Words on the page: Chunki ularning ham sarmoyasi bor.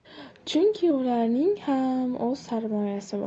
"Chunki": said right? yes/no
yes